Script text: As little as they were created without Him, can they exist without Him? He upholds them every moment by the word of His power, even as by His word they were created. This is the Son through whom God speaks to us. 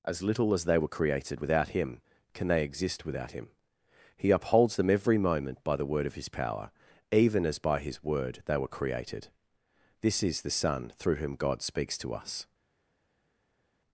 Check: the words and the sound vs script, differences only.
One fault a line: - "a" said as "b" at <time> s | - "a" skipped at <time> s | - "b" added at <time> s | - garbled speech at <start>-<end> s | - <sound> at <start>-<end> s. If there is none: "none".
none